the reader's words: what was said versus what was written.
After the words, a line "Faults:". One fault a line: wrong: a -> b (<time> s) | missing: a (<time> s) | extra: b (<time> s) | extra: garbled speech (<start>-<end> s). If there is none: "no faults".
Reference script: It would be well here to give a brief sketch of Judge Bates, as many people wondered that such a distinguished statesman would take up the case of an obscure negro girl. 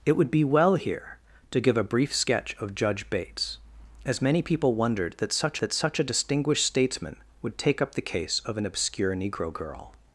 It would be well here to give a brief sketch of Judge Bates, as many people wondered that such that such a distinguished statesman would take up the case of an obscure negro girl.
Faults:
extra: that such (5.6 s)